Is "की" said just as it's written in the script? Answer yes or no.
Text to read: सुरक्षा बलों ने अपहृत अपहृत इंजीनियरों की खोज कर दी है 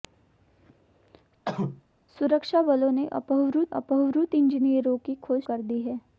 yes